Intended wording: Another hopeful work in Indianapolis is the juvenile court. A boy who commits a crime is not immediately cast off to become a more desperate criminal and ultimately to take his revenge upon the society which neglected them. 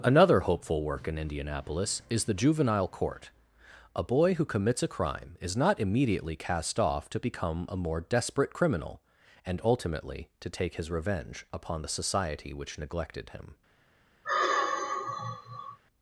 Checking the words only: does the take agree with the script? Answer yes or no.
no